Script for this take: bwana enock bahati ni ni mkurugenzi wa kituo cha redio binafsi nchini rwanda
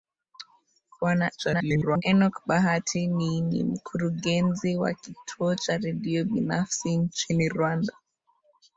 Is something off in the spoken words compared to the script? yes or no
yes